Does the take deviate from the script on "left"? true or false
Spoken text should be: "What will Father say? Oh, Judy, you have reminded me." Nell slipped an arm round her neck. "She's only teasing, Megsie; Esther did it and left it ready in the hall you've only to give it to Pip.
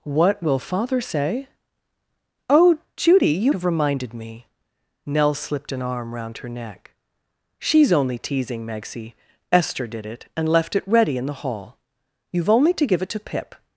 false